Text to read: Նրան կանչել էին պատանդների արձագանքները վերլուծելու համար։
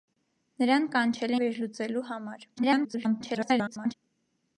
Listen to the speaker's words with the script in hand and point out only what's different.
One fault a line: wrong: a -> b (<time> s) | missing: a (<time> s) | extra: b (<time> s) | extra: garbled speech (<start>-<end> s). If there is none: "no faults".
missing: էին պատանդների արձագանքները (1.4 s)
extra: garbled speech (2.6-3.9 s)